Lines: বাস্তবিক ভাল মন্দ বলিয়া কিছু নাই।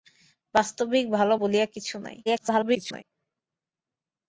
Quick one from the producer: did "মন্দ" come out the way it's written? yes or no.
no